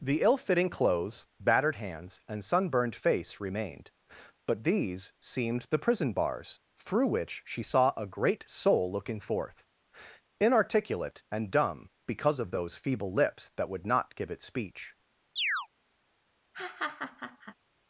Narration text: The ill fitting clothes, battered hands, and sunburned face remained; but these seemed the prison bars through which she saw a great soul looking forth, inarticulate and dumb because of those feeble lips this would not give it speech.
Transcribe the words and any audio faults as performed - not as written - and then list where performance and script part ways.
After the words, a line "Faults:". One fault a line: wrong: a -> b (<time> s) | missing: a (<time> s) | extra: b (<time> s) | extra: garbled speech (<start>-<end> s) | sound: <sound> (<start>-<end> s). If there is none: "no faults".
The ill fitting clothes, battered hands, and sunburned face remained; but these seemed the prison bars through which she saw a great soul looking forth, inarticulate and dumb because of those feeble lips that would not give it speech.
Faults:
wrong: this -> that (13.6 s)
sound: chirp (15.4-15.7 s)
sound: laugh (16.5-17.6 s)